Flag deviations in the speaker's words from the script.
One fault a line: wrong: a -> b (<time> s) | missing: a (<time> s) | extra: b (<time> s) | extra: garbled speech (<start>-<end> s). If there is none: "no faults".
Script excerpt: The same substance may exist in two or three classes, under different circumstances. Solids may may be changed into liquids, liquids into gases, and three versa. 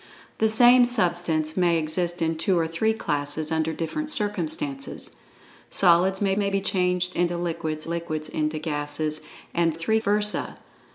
no faults